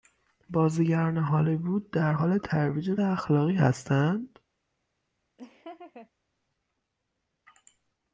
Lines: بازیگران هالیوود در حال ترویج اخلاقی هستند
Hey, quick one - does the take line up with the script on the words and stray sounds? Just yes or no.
no